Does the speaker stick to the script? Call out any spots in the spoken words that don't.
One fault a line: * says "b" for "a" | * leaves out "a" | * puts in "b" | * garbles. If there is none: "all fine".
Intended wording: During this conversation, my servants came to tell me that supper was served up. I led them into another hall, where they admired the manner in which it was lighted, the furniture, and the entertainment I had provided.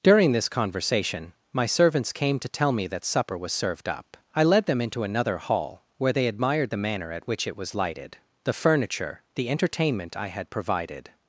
* says "at" for "in"
* leaves out "and"